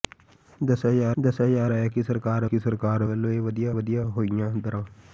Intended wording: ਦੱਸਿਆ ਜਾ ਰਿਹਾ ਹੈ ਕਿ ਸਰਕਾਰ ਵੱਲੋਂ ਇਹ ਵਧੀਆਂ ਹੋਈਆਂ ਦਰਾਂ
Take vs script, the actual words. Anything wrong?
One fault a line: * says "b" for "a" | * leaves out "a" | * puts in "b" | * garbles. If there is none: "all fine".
* puts in "ਦੱਸਿਆ ਜਾ"
* puts in "ਕਿ ਸਰਕਾਰ"
* puts in "ਵਧੀਆਂ"